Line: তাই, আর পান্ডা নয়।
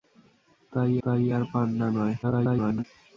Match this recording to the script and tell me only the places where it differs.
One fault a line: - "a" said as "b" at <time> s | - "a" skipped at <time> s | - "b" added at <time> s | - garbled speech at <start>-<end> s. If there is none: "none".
- "তাই" added at 1.0 s
- garbled speech at 2.2-2.8 s